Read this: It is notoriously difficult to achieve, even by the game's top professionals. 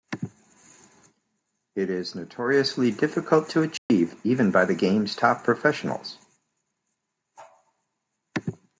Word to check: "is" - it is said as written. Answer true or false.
true